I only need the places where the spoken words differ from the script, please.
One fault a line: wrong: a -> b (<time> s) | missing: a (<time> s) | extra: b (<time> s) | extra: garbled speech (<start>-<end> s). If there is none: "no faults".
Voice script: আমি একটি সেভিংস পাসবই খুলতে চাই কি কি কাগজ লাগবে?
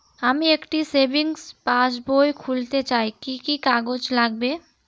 no faults